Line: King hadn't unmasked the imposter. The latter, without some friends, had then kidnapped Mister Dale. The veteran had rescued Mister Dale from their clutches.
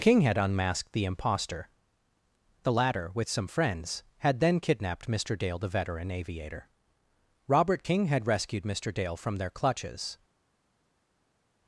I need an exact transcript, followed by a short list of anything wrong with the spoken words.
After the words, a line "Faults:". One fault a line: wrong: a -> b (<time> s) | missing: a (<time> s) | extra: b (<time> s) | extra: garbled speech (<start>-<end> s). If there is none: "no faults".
King had unmasked the imposter. The latter, with some friends, had then kidnapped Mister Dale. The veteran aviator, Robert King, had rescued Mister Dale from their clutches.
Faults:
wrong: hadn't -> had (0.2 s)
wrong: without -> with (3.1 s)
extra: aviator Robert King (6.1 s)